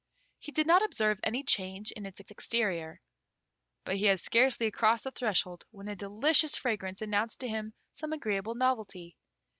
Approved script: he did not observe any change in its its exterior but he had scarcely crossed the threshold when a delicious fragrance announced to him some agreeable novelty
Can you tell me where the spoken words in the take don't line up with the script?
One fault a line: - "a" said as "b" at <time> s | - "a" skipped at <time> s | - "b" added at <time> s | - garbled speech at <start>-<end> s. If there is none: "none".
none